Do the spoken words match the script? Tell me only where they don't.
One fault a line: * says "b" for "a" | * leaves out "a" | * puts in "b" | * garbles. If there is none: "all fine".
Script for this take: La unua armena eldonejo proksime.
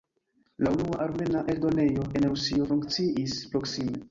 * puts in "en Rusio funkciis"